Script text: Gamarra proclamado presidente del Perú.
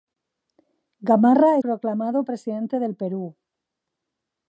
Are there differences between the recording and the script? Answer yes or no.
no